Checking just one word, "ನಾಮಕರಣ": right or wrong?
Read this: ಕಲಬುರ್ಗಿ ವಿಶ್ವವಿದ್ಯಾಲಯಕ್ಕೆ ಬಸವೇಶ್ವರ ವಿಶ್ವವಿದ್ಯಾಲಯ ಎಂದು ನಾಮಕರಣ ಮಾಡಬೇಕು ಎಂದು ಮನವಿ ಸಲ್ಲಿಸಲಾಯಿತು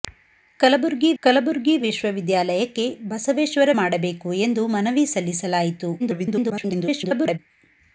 wrong